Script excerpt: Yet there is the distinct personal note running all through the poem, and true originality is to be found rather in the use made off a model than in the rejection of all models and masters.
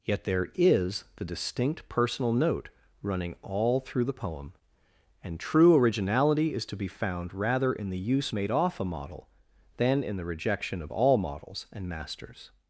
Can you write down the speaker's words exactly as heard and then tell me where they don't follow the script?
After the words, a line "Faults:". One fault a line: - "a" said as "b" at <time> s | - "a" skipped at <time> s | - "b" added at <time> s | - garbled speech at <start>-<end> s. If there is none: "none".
Yet there is the distinct personal note running all through the poem, and true originality is to be found rather in the use made off a model than in the rejection of all models and masters.
Faults:
none